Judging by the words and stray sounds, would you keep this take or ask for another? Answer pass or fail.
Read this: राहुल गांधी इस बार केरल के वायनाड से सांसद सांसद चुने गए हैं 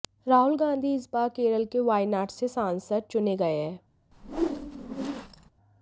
fail